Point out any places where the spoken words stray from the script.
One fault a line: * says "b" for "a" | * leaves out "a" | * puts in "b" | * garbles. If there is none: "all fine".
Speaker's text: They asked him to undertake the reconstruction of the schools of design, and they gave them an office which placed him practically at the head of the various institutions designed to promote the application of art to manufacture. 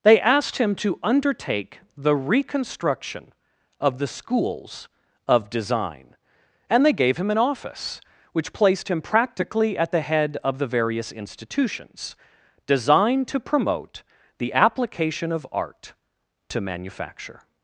* says "him" for "them"